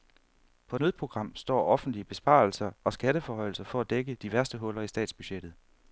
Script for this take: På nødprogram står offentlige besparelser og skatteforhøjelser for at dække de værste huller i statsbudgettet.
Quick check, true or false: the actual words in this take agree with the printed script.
true